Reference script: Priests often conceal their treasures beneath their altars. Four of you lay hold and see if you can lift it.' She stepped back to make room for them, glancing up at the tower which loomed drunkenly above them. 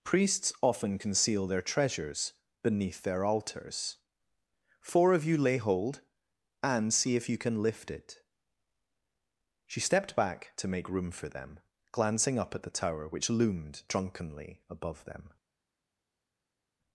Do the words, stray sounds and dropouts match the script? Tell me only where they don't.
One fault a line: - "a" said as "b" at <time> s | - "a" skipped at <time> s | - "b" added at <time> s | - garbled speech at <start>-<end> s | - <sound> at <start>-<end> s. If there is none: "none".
none